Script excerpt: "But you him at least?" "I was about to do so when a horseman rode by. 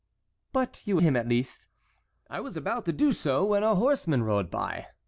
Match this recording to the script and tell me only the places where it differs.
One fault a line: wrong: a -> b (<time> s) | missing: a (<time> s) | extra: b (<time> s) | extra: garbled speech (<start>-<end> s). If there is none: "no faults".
no faults